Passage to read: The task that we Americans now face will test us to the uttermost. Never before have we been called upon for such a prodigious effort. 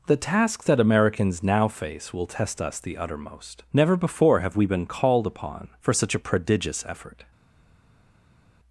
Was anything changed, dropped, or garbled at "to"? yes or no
yes